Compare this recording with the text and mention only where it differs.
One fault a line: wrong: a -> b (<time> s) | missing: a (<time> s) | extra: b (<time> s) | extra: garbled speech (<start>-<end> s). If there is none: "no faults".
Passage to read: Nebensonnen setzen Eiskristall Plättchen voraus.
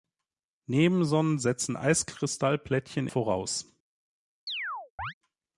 no faults